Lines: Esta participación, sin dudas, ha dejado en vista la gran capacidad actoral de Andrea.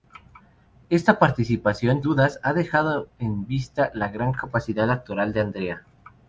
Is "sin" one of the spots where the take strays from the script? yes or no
yes